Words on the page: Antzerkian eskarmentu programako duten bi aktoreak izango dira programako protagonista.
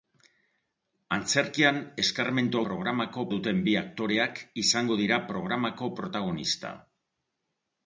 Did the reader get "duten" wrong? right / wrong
right